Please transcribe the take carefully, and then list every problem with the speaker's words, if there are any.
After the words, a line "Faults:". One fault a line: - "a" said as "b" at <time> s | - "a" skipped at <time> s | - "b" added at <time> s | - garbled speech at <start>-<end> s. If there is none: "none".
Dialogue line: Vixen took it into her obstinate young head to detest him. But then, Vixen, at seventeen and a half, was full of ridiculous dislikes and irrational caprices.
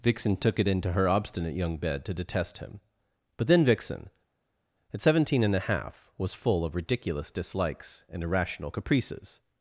Vixen took it into her obstinate young bed to detest him. But then, Vixen, at seventeen and a half, was full of ridiculous dislikes and irrational caprices.
Faults:
- "head" said as "bed" at 1.8 s